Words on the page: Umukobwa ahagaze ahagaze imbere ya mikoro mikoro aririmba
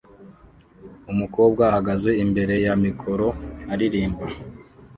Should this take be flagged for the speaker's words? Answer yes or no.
yes